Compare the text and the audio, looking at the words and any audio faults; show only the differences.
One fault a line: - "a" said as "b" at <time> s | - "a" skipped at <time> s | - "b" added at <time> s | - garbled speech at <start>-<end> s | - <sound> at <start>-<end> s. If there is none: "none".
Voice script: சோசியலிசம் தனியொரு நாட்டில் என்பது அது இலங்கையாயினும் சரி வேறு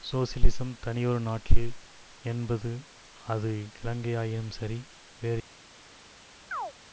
- chirp at 6.5-6.7 s